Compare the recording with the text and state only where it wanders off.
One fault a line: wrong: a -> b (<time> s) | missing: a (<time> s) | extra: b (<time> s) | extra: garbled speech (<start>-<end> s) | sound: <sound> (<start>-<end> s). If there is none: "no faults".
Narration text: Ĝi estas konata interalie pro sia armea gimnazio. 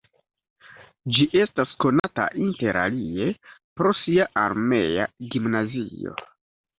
sound: dropout (2.0-2.0 s)